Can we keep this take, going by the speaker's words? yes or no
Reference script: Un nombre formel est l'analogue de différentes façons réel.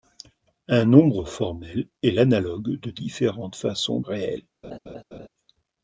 yes